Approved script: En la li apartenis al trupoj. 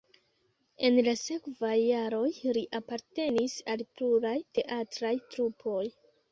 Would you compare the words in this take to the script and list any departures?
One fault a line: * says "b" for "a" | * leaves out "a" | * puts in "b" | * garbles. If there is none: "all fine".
* puts in "sekvaj jaroj"
* puts in "pluraj teatraj"